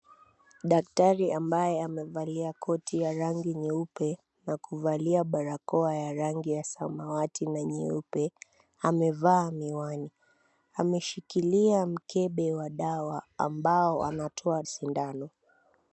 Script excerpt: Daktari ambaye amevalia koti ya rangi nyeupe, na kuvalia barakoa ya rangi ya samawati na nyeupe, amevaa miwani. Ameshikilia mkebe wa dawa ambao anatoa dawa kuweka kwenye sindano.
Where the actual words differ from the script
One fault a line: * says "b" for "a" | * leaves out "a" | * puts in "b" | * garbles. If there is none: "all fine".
* leaves out "dawa kuweka kwenye"